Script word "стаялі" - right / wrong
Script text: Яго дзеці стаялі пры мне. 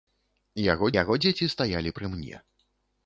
right